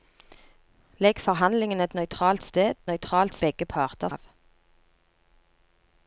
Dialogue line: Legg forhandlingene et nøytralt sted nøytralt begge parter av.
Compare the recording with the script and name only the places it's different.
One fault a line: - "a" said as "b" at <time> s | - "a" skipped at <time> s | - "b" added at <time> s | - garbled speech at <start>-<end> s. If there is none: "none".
none